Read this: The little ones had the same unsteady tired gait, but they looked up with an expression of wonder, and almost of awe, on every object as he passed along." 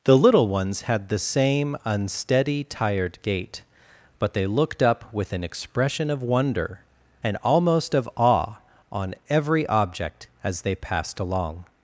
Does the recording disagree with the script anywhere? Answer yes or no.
yes